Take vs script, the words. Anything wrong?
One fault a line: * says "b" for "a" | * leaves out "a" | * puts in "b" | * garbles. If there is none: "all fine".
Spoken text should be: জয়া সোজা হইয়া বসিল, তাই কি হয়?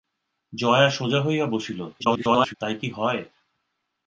* garbles